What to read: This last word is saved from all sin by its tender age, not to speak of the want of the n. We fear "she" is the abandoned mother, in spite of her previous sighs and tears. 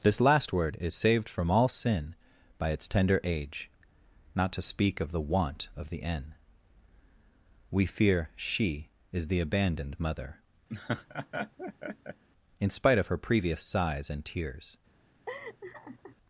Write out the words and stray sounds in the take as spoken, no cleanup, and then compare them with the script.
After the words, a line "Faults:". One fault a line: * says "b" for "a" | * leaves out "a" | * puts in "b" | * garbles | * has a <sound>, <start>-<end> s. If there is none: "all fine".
This last word is saved from all sin by its tender age, not to speak of the want of the n. We fear "she" is the abandoned mother, in spite of her previous sighs and tears.
Faults:
* has a laugh, 10.7-12.2 s
* has a laugh, 15.3-16.2 s